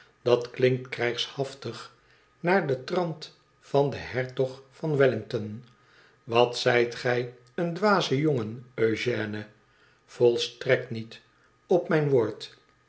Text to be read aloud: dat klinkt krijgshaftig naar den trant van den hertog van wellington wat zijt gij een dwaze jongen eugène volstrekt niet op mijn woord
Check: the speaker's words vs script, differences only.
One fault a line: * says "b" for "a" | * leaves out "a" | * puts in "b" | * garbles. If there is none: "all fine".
all fine